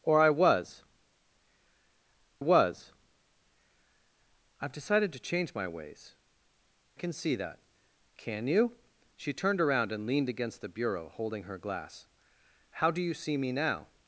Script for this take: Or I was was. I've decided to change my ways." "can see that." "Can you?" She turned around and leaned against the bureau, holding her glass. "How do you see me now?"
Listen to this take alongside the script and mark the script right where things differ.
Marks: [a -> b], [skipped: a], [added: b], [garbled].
Or I was was. I've decided to change my ways." "can see that." "Can you?" She turned around and leaned against the bureau, holding her glass. "How do you see me now?"